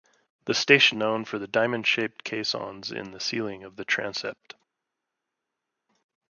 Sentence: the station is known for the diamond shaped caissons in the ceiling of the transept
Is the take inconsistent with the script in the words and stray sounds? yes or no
yes